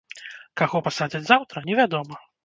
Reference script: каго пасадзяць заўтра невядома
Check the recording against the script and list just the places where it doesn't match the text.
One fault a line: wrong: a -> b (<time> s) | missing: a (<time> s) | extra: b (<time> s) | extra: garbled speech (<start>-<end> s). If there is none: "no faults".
no faults